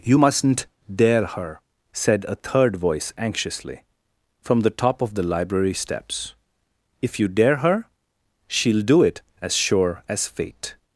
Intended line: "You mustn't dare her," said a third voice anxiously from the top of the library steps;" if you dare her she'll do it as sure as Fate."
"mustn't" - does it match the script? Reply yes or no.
yes